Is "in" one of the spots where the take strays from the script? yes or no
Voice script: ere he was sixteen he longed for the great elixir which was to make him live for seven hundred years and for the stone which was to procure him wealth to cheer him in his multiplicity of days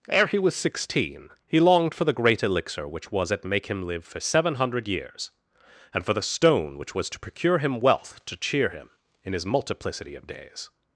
no